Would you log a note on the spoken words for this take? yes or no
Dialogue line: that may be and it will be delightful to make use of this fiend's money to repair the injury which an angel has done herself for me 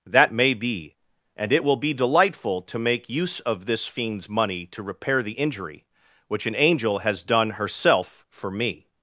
no